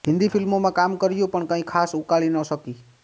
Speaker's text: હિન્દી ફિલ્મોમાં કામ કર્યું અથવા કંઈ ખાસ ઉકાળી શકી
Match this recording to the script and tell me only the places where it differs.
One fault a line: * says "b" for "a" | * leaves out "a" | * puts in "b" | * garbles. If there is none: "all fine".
* says "પણ" for "અથવા"
* puts in "ન"